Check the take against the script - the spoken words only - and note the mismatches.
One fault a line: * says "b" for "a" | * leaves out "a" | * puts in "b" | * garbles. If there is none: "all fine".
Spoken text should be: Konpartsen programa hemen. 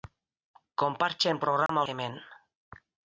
all fine